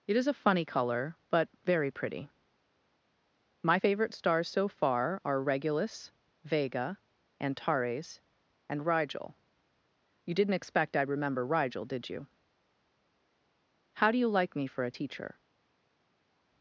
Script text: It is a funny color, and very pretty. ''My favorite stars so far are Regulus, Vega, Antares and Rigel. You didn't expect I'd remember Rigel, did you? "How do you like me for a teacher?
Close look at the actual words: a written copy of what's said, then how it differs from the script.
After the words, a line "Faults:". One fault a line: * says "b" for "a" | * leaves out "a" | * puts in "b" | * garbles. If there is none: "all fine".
It is a funny color, but very pretty. ''My favorite stars so far are Regulus, Vega, Antares and Rigel. You didn't expect I'd remember Rigel, did you? "How do you like me for a teacher?
Faults:
* says "but" for "and"